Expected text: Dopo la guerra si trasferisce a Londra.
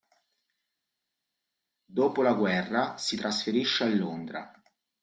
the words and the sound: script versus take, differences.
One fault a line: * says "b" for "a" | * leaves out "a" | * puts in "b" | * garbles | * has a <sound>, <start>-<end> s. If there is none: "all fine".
all fine